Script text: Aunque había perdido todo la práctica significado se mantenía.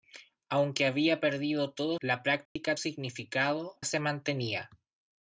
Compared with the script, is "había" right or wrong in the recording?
right